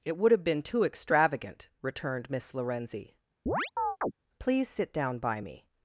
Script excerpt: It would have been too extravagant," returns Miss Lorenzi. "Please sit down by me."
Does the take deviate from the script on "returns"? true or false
true